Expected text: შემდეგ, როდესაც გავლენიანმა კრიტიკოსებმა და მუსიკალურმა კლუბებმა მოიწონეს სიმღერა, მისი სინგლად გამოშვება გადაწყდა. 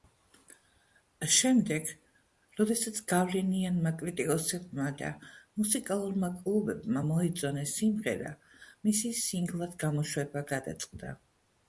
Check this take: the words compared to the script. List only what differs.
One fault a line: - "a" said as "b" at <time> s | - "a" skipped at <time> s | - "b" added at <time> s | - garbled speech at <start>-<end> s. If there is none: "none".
none